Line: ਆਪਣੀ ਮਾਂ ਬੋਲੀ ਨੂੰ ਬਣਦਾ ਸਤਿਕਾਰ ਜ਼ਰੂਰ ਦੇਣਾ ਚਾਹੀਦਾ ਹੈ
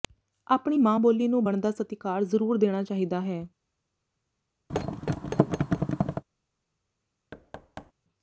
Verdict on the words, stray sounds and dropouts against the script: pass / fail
fail